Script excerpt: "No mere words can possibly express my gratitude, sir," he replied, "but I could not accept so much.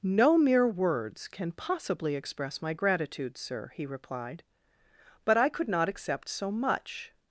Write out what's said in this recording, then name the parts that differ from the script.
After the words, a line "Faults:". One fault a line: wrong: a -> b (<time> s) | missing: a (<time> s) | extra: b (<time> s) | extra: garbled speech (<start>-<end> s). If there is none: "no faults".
"No mere words can possibly express my gratitude, sir," he replied, "but I could not accept so much.
Faults:
no faults